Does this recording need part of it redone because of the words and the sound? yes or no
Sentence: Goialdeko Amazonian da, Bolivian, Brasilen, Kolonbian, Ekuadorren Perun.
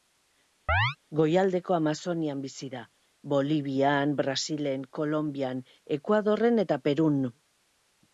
yes